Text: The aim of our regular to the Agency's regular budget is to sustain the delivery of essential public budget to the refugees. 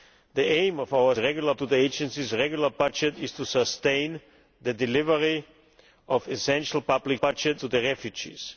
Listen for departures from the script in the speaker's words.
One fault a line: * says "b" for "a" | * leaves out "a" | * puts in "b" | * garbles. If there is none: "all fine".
all fine